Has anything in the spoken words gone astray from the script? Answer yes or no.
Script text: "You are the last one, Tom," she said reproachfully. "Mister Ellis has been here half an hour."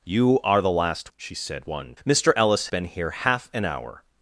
yes